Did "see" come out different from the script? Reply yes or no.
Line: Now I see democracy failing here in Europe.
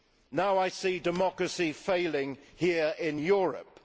no